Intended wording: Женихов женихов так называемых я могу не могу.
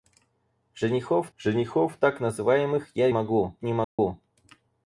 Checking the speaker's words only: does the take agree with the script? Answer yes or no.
yes